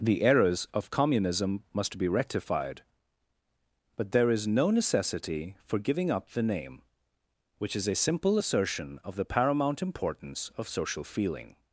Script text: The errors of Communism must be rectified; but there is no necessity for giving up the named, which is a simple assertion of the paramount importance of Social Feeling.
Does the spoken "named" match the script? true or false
false